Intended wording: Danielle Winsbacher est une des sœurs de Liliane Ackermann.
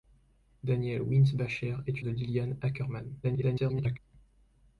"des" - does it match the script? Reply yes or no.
no